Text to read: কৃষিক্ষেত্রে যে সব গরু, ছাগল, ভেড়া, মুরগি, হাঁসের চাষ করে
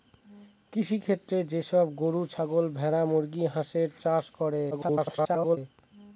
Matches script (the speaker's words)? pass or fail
fail